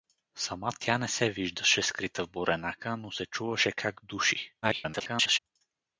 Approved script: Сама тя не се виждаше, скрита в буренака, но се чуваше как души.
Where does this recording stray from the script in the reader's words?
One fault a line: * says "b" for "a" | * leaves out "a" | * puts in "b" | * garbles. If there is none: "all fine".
* garbles